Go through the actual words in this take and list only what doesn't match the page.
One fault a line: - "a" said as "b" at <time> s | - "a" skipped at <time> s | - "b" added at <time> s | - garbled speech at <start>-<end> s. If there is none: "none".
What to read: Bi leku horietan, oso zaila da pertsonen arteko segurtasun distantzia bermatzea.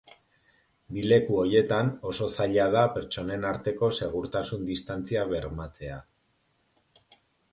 none